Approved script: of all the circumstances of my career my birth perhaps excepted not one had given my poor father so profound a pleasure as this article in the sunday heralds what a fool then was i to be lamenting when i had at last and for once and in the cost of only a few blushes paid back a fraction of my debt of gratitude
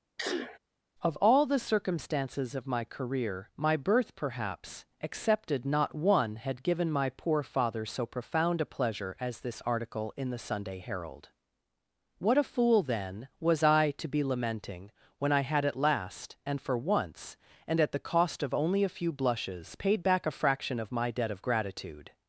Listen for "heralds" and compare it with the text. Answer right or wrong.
wrong